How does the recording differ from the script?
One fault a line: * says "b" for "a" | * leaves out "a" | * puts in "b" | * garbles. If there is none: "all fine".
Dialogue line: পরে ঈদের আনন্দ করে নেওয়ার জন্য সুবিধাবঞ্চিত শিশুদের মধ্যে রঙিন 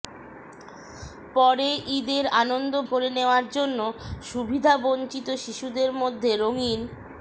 all fine